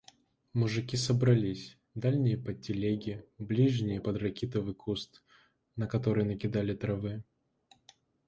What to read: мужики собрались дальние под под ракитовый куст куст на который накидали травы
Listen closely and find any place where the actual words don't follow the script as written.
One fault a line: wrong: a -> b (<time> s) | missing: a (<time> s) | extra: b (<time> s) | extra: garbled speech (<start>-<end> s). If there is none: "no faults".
extra: телеги ближние (2.6 s)
missing: куст (5.2 s)